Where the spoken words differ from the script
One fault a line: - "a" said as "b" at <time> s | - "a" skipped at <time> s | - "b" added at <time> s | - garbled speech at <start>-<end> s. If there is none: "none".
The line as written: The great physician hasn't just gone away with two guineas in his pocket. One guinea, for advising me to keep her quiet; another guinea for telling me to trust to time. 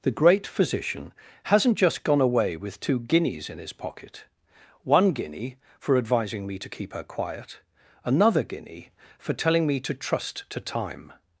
none